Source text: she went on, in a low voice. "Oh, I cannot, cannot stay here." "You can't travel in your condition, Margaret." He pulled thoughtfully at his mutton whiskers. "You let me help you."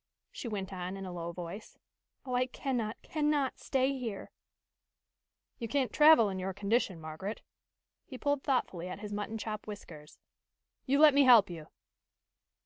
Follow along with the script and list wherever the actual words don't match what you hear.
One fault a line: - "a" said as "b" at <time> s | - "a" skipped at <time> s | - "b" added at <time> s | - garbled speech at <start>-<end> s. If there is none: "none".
- "chop" added at 9.4 s